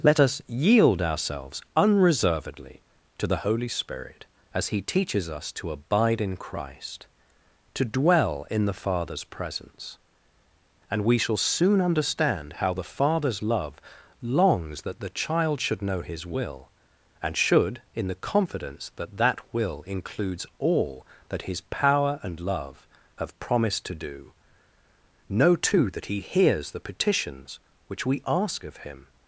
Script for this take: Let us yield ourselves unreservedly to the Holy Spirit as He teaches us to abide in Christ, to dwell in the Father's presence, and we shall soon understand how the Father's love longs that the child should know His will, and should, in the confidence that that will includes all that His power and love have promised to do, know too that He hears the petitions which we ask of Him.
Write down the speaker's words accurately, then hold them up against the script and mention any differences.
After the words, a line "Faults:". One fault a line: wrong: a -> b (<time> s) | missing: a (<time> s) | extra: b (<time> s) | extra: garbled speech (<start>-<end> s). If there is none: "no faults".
Let us yield ourselves unreservedly to the Holy Spirit as He teaches us to abide in Christ, to dwell in the Father's presence, and we shall soon understand how the Father's love longs that the child should know His will, and should, in the confidence that that will includes all that His power and love have promised to do, know too that He hears the petitions which we ask of Him.
Faults:
no faults